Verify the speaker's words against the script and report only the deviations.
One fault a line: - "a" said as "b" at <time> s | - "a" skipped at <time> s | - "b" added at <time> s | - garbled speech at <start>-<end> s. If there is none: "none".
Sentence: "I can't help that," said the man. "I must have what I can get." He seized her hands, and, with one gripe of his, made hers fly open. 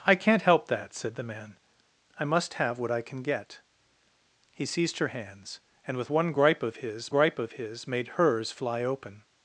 - "gripe of his" added at 7.1 s